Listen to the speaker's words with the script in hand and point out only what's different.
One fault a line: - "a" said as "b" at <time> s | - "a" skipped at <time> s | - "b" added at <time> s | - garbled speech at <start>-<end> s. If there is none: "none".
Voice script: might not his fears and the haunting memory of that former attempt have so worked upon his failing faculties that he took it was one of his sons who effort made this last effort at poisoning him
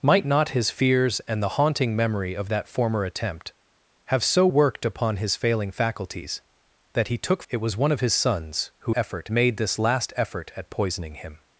none